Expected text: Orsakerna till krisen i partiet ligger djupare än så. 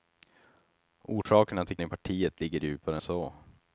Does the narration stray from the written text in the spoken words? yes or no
yes